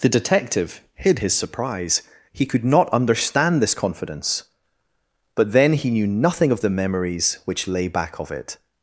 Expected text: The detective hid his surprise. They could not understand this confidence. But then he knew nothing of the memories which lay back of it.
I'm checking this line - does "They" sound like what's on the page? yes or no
no